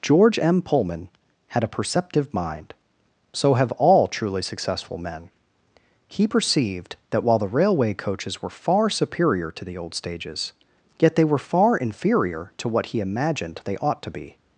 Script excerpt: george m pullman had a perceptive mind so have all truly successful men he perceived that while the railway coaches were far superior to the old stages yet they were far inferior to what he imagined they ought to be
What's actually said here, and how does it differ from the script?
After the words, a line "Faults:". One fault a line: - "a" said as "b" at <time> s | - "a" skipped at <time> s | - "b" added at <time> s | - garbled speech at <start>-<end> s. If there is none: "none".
george m pullman had a perceptive mind so have all truly successful men he perceived that while the railway coaches were far superior to the old stages yet they were far inferior to what he imagined they ought to be
Faults:
none